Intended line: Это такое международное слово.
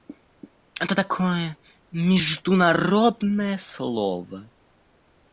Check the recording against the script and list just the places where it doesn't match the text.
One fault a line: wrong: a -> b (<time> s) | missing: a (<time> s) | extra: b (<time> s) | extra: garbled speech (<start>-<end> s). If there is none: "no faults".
no faults